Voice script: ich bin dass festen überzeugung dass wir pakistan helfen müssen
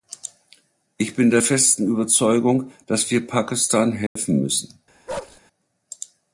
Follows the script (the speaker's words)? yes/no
no